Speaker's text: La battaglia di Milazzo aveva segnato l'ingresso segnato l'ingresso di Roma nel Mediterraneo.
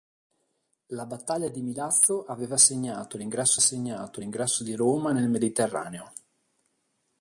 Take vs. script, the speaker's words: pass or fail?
pass